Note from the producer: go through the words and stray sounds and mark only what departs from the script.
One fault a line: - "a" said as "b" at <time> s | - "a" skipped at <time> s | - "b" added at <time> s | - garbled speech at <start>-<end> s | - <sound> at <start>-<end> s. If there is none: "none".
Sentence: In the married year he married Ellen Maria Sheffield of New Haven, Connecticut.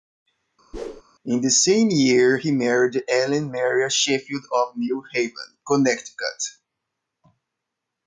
- whoosh at 0.7-1.0 s
- "married" said as "same" at 1.5 s